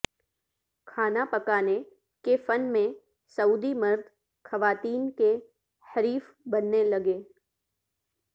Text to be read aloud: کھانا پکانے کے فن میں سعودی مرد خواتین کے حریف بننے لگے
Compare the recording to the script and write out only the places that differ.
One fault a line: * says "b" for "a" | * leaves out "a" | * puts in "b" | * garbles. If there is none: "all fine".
all fine